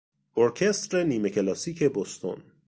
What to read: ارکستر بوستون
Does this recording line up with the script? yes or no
no